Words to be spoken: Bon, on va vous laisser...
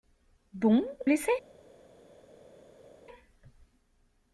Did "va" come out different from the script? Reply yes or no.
yes